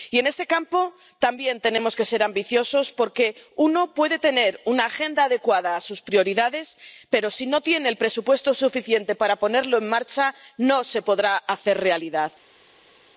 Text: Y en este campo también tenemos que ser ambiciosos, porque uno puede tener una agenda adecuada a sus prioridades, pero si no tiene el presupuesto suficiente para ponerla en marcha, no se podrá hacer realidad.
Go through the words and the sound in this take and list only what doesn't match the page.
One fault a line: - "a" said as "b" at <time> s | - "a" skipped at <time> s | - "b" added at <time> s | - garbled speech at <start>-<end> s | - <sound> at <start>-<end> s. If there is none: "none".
none